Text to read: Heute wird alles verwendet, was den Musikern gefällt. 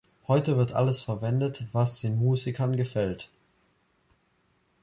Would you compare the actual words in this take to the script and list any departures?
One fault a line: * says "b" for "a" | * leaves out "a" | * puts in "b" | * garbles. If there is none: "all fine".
all fine